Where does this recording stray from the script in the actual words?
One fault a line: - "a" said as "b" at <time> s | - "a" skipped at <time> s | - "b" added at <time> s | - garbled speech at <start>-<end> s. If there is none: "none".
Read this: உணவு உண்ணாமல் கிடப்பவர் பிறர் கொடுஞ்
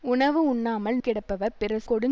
none